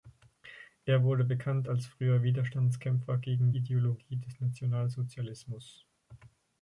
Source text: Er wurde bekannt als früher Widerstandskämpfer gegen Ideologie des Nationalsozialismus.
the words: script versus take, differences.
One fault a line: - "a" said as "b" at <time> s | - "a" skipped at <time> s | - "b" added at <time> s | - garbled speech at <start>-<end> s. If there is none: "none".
none